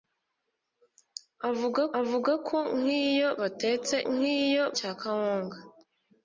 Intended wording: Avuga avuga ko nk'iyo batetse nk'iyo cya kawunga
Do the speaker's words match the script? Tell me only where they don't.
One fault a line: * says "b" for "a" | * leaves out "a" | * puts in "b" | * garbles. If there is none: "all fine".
all fine